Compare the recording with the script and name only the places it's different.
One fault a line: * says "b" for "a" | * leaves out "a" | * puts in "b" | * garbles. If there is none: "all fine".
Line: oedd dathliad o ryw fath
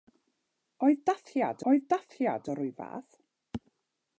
* puts in "oedd dathliad"